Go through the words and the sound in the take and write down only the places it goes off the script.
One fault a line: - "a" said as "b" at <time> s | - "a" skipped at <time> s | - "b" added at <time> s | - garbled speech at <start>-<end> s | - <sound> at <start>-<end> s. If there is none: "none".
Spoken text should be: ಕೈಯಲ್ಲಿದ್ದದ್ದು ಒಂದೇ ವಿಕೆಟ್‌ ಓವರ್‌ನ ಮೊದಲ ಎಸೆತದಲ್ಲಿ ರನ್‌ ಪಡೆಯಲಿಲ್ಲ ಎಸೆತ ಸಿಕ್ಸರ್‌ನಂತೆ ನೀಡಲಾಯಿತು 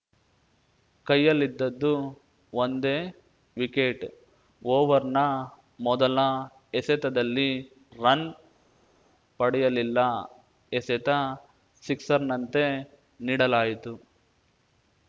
none